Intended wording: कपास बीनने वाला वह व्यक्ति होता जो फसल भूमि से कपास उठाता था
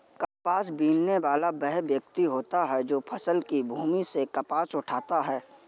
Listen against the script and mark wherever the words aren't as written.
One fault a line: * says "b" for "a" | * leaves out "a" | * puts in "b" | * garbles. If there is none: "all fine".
* puts in "है"
* puts in "की"
* says "है" for "था"